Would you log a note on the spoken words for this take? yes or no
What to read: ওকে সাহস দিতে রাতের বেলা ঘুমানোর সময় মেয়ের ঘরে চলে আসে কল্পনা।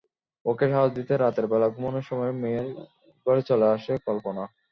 no